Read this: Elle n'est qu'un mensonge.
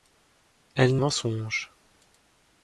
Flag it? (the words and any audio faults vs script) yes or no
yes